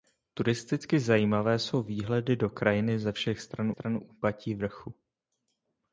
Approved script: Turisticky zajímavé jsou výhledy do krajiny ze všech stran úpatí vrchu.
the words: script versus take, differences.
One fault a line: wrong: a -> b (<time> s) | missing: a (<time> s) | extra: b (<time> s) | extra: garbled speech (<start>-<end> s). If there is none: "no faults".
extra: stran (3.7 s)